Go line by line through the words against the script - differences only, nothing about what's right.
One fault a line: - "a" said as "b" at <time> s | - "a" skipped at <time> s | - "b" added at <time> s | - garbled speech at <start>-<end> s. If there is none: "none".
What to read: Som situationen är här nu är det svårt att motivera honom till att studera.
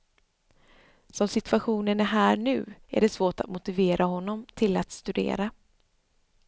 none